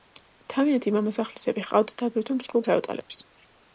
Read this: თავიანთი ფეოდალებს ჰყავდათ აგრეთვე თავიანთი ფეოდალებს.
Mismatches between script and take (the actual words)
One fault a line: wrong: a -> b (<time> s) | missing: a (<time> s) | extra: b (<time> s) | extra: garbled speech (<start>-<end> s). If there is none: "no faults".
wrong: ფეოდალებს -> მამასახლისები (0.9 s)
wrong: თავიანთი -> მსხვილ (2.4 s)